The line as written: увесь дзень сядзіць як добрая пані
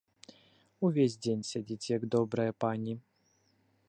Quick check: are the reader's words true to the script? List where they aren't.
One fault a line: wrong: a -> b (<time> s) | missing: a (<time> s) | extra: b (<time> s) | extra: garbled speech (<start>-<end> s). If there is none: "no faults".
no faults